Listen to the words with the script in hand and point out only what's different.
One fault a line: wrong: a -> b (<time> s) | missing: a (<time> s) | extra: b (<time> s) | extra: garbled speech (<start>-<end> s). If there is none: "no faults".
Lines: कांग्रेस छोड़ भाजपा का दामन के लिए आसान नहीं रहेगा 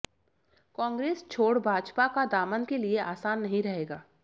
no faults